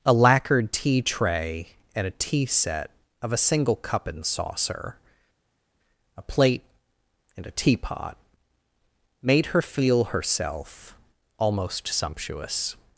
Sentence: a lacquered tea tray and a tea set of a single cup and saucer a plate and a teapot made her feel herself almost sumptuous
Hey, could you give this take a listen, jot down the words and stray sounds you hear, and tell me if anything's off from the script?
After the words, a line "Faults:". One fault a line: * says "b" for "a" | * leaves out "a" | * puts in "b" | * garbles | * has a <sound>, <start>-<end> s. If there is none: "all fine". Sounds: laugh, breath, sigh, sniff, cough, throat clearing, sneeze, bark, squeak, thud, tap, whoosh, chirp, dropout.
a lacquered tea tray and a tea set of a single cup and saucer a plate and a teapot made her feel herself almost sumptuous
Faults:
all fine